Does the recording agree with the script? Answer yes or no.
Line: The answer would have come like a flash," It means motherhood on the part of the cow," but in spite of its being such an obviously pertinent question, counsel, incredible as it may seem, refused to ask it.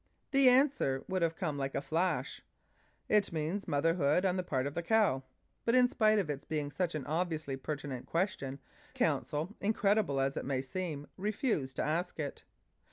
yes